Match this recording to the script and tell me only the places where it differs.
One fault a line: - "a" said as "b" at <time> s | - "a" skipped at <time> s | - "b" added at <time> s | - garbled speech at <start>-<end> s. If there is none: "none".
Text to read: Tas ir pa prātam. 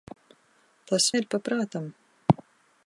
none